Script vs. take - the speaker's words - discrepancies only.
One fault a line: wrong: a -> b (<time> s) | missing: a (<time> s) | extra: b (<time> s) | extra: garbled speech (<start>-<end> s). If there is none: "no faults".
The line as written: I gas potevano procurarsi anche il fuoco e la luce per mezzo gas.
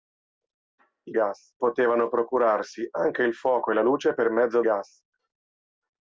no faults